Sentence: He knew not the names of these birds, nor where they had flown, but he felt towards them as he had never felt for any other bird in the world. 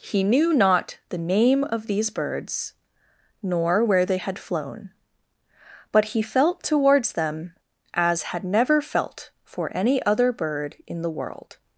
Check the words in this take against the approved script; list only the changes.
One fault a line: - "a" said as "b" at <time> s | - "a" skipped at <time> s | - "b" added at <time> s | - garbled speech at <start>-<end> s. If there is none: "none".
- "names" said as "name" at 1.2 s
- "he" skipped at 8.2 s